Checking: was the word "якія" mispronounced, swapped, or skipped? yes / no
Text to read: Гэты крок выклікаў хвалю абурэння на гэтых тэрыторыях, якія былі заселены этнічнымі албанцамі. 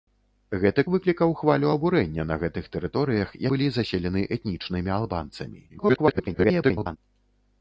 yes